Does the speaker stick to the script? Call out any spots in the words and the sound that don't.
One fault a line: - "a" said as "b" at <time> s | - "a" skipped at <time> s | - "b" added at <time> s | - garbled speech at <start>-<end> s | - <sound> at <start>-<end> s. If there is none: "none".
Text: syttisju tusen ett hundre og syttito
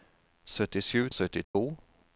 - "tusen ett hundre" skipped at 1.1 s
- dropout at 1.4-1.5 s